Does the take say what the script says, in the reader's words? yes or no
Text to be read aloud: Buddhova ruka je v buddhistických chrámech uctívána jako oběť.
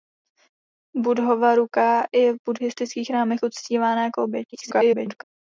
no